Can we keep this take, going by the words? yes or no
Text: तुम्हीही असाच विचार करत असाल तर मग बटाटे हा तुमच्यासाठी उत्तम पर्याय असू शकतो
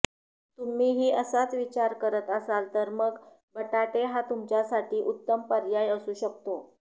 yes